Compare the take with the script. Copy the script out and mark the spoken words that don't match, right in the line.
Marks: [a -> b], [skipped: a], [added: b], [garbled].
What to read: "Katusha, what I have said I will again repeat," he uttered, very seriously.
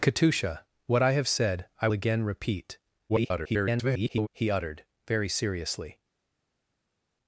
"Katusha, what I have said I [skipped: will] again repeat," [garbled] he uttered, very seriously.